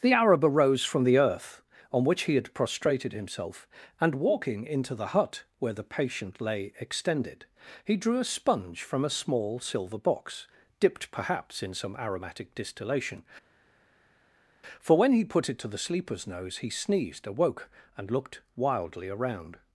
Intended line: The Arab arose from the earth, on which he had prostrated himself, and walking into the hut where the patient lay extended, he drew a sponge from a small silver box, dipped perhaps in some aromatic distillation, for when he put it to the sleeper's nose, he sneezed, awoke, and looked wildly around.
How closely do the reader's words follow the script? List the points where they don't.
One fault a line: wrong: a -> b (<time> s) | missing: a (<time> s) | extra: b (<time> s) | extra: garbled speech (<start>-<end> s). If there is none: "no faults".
no faults